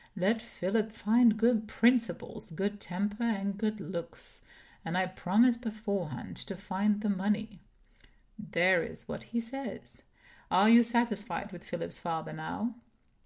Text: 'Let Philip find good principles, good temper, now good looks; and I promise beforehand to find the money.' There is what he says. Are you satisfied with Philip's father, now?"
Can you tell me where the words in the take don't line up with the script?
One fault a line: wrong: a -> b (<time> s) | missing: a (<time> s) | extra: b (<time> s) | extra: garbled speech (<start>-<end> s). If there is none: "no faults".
wrong: now -> and (3.2 s)